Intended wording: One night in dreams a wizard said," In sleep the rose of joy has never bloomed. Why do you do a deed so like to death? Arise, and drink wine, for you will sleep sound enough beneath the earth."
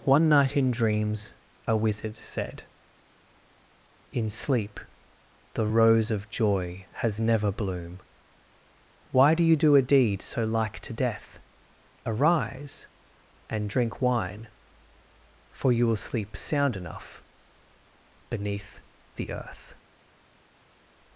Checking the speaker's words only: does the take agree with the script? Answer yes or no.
no